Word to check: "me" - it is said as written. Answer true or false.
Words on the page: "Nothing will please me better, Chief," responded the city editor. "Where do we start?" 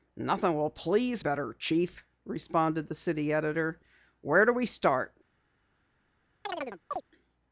false